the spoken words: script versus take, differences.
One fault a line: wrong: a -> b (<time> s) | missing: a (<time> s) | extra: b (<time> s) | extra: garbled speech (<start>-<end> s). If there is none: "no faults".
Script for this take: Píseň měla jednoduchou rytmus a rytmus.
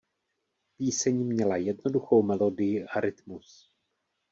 wrong: rytmus -> melodii (2.2 s)